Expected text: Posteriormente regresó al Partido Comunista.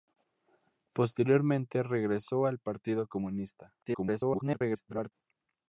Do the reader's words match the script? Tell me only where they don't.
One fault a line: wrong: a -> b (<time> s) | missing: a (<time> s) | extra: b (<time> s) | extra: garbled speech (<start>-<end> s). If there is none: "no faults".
extra: garbled speech (3.8-5.1 s)